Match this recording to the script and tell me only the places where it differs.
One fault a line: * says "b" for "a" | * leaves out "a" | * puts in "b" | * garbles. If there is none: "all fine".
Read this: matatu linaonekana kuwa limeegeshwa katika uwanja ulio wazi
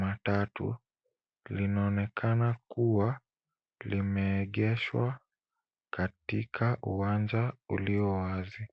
all fine